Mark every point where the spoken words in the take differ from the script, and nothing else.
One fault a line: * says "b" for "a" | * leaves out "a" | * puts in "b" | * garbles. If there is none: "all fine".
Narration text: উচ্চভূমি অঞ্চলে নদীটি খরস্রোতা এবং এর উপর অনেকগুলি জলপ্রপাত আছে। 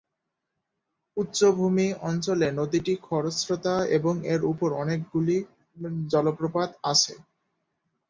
all fine